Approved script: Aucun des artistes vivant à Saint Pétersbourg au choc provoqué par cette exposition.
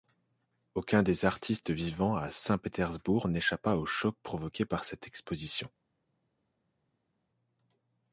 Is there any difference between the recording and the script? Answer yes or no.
yes